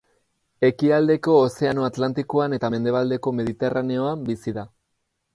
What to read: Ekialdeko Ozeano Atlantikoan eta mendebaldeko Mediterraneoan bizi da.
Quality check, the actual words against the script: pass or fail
pass